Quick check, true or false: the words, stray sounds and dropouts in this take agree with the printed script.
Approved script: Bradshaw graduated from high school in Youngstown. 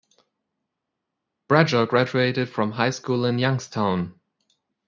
true